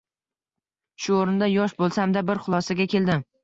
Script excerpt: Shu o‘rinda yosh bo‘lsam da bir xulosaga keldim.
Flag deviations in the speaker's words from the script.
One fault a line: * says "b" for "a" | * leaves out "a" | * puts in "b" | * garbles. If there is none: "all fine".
all fine